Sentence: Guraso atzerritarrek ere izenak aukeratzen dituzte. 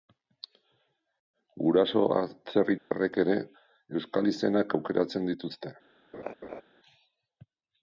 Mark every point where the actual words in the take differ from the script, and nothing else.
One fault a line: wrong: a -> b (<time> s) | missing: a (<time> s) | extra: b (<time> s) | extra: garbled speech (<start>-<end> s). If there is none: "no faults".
extra: euskal (4.0 s)